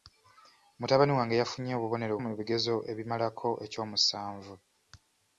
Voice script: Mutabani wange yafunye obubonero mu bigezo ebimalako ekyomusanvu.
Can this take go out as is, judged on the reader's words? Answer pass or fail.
pass